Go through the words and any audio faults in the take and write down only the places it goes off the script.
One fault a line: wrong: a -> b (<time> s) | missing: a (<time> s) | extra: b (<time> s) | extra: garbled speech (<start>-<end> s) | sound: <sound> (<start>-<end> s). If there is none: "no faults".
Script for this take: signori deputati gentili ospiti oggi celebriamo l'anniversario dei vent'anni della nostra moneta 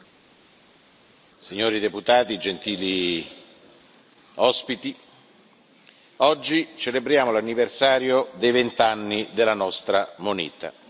no faults